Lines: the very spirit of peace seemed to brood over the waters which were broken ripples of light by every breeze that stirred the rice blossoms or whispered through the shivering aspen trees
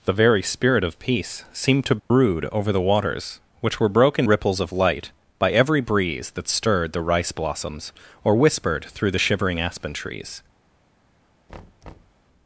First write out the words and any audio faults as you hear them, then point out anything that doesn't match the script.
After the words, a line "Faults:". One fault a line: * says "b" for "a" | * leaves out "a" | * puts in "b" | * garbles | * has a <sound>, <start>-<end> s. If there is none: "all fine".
the very spirit of peace seemed to brood over the waters which were broken ripples of light by every breeze that stirred the rice blossoms or whispered through the shivering aspen trees
Faults:
* has a dropout, 2.0-2.1 s
* has a thud, 11.5-12.2 s